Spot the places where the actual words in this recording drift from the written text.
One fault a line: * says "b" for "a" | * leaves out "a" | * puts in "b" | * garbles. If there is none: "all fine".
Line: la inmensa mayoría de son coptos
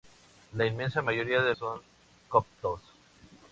all fine